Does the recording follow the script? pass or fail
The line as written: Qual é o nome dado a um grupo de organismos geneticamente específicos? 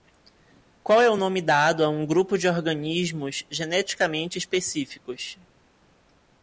pass